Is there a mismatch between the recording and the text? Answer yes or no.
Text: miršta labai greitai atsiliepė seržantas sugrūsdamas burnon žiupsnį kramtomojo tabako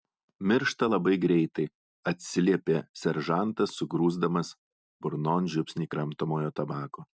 no